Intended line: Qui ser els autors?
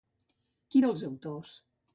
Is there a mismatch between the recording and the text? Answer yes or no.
no